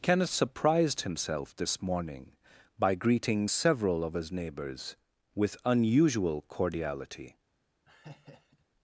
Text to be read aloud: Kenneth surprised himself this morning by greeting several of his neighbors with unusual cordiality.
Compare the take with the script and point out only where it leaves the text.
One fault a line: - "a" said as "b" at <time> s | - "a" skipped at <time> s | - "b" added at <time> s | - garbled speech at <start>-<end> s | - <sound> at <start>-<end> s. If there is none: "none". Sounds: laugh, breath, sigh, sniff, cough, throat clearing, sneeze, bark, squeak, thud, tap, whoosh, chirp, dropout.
- laugh at 7.9-8.7 s